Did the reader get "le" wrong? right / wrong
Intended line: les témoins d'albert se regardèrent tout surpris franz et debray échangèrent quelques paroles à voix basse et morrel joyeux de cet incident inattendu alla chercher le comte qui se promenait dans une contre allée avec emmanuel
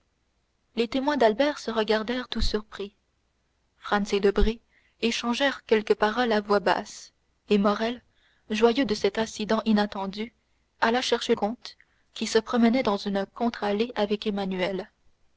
wrong